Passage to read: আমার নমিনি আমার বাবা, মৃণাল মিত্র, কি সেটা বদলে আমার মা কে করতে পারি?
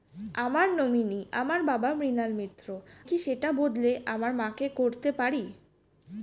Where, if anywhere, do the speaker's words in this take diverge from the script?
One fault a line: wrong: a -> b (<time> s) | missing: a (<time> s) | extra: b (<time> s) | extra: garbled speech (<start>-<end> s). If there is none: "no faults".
no faults